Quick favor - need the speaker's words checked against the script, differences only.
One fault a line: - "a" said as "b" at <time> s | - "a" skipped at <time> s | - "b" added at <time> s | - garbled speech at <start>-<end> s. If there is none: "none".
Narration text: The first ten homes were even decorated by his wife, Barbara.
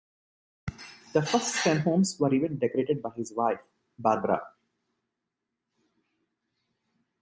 none